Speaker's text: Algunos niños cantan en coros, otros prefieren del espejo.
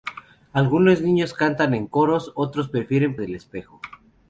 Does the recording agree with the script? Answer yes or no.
yes